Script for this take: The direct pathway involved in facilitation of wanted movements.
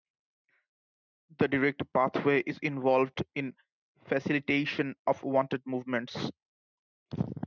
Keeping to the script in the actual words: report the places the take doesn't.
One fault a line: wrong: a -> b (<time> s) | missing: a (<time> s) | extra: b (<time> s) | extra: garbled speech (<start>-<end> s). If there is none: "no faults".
extra: is (2.5 s)